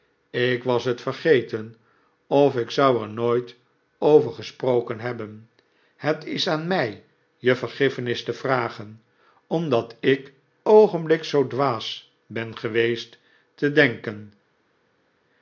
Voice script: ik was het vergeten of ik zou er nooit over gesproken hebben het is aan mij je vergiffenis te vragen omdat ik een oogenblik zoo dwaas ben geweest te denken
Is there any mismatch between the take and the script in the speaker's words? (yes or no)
yes